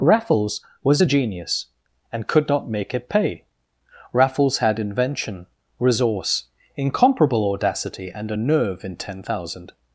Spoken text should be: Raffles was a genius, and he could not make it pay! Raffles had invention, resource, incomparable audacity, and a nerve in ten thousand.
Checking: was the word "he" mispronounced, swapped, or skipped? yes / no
yes